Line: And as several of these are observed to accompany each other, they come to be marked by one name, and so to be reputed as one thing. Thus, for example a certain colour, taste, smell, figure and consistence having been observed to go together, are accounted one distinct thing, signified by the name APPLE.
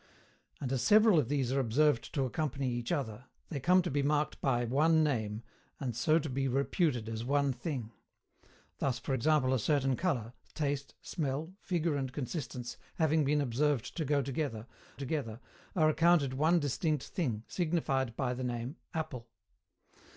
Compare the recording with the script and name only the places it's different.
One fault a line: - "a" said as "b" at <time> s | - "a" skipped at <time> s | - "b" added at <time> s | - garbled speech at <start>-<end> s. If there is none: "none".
- "together" added at 14.9 s